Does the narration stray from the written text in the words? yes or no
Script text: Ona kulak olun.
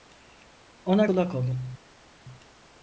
no